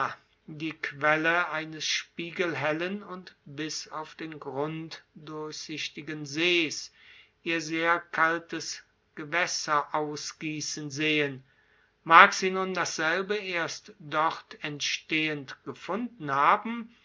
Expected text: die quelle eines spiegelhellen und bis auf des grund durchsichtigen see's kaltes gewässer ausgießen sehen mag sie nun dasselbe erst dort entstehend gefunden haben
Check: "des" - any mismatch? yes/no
yes